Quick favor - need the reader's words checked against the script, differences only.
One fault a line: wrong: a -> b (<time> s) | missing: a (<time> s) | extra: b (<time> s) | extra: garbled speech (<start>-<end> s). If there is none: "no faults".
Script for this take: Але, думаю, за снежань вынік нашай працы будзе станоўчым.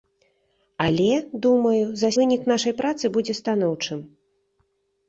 missing: снежань (2.1 s)